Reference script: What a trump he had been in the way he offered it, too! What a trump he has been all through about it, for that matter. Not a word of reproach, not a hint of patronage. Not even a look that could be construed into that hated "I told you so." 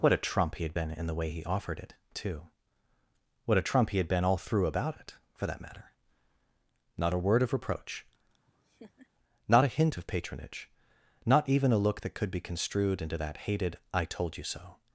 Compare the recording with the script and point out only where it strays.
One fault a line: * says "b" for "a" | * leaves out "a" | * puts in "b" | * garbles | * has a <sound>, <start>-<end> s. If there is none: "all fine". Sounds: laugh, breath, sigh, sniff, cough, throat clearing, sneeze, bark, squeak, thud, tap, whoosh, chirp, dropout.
* says "had" for "has"
* has a laugh, 8.4-9.1 s